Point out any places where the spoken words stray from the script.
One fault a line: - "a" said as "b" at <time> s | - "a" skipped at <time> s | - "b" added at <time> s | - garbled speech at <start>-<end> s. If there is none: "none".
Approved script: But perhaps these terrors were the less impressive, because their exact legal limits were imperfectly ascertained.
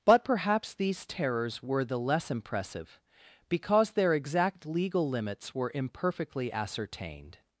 none